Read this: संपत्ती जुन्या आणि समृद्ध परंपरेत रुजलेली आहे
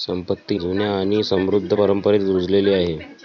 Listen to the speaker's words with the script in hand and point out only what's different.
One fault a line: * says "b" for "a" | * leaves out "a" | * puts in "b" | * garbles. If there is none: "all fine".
all fine